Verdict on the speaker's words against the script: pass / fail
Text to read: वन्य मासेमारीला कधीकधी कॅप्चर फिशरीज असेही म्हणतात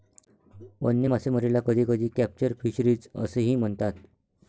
pass